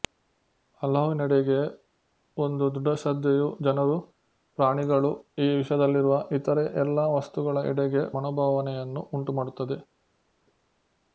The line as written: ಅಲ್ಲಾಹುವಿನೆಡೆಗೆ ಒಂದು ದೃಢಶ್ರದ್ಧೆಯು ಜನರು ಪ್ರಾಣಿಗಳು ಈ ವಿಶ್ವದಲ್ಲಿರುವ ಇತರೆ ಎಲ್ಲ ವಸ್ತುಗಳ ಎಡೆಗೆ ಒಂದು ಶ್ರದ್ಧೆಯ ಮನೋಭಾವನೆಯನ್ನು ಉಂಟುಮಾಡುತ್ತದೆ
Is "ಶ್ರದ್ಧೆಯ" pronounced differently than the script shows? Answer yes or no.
yes